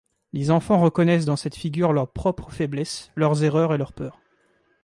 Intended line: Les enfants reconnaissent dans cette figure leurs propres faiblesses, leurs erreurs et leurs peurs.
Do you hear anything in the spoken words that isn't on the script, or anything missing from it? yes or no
no